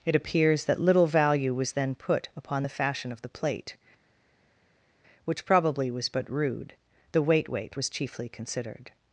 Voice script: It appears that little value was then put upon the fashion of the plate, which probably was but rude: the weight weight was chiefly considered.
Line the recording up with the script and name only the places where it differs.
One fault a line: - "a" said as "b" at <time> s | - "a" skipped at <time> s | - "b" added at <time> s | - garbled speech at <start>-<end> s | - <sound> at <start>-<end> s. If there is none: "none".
none